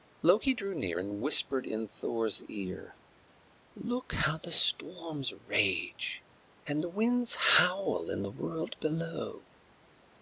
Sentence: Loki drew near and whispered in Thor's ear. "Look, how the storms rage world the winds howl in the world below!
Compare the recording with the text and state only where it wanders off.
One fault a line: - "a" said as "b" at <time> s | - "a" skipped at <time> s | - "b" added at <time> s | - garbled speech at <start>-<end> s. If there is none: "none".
- "world" said as "and" at 6.6 s